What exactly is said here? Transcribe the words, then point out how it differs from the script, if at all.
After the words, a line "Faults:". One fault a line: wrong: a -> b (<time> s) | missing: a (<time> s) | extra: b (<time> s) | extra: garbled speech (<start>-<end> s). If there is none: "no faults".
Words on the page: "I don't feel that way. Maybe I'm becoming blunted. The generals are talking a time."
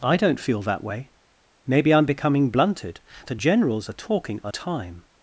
"I don't feel that way. Maybe I'm becoming blunted. The generals are talking a time."
Faults:
no faults